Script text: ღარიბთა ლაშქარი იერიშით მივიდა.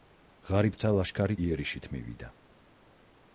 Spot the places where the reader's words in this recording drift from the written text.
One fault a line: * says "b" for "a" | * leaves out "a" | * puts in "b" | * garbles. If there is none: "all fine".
all fine